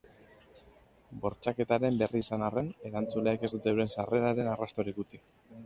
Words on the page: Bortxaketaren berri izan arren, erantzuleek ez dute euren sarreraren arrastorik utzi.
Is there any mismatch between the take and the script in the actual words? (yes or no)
no